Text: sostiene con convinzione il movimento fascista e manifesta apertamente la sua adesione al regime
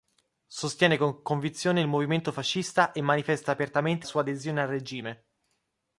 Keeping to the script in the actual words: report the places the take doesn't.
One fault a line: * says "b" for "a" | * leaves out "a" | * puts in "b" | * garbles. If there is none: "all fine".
* leaves out "la"